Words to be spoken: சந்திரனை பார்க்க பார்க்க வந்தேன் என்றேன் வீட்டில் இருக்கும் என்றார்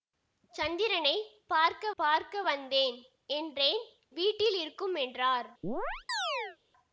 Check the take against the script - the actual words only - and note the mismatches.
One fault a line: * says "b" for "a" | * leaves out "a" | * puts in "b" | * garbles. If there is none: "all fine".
all fine